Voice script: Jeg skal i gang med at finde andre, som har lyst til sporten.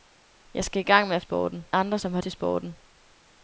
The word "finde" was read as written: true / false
false